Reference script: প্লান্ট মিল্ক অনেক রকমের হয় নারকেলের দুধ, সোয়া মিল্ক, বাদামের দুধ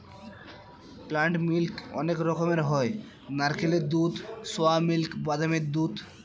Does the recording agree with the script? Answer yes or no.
yes